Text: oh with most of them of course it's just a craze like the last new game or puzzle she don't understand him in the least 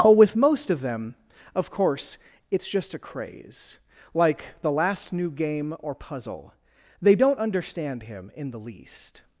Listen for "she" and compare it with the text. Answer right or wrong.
wrong